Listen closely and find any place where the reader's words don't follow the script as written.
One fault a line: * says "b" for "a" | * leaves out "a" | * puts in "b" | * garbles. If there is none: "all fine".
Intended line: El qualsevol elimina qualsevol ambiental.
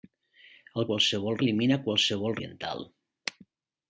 all fine